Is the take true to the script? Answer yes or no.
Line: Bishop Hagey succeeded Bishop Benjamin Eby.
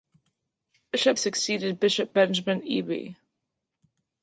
no